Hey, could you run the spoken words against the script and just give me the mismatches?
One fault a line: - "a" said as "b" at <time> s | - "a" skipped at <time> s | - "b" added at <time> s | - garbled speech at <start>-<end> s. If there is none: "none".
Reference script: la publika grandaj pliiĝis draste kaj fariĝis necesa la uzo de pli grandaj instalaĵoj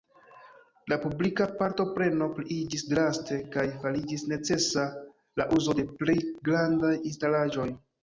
- "grandaj" said as "partopreno" at 1.6 s